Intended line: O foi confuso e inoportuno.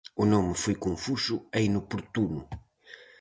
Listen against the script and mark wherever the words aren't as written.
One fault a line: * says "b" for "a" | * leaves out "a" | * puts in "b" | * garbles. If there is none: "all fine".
* puts in "nome"